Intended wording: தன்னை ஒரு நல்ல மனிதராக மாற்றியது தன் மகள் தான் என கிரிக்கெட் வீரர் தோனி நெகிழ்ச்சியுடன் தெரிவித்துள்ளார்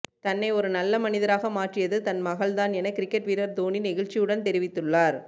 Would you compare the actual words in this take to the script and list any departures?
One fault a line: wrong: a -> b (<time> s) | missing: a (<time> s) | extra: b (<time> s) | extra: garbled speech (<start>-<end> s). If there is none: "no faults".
no faults